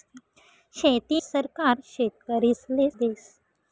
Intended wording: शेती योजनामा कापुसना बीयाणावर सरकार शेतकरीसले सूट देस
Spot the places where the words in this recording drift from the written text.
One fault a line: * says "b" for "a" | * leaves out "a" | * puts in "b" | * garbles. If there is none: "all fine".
* leaves out "योजनामा कापुसना बीयाणावर"
* leaves out "सूट"